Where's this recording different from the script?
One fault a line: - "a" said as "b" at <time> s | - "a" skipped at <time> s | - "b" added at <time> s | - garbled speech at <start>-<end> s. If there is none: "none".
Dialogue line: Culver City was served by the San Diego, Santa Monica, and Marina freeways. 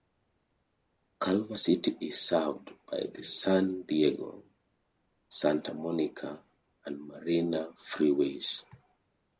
- "was" said as "is" at 2.0 s